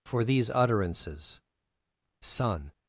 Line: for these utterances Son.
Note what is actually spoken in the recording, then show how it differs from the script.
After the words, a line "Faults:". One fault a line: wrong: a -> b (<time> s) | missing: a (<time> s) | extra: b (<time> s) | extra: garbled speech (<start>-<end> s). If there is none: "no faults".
for these utterances Son.
Faults:
no faults